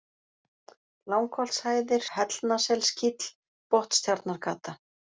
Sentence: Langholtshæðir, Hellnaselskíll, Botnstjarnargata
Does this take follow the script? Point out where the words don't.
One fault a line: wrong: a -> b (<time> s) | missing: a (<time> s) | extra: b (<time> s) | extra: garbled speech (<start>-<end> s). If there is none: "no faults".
no faults